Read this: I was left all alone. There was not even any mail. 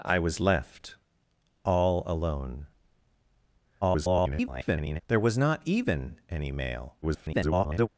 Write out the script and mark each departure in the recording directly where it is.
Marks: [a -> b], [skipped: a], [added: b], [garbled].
I was left all alone. [garbled] There was not even any mail. [garbled]